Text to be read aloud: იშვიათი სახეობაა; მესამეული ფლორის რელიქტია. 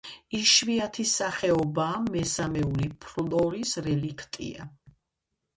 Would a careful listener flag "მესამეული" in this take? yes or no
no